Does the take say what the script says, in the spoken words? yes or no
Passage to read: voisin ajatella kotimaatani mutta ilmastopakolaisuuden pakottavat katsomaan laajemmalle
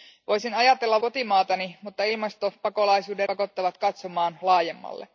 yes